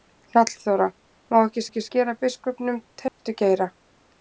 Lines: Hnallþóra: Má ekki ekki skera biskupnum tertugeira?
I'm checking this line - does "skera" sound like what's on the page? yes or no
yes